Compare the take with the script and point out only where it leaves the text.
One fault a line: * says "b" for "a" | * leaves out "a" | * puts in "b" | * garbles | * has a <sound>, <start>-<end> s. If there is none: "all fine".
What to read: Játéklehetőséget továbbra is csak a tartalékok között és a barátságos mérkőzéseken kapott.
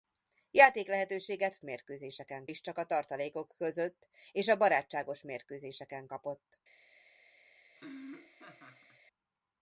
* says "mérkőzéseken" for "továbbra"
* has a laugh, 7.8-9.0 s